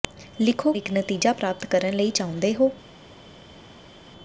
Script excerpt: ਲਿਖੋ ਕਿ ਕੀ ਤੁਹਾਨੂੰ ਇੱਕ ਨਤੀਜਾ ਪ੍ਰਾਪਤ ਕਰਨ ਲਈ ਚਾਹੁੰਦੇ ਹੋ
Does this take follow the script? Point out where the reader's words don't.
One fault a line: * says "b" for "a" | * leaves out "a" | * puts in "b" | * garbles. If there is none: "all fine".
* leaves out "ਕਿ ਕੀ ਤੁਹਾਨੂੰ"